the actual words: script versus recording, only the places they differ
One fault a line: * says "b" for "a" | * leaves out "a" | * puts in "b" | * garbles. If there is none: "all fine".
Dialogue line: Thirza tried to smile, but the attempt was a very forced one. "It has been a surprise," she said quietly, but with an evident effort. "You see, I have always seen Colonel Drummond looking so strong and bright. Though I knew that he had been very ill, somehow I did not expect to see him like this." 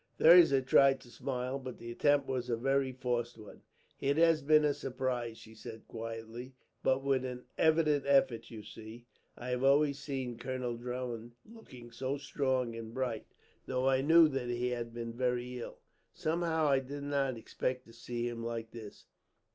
all fine